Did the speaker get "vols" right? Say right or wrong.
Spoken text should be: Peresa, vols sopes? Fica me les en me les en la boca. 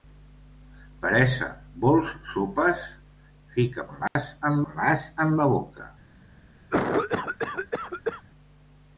right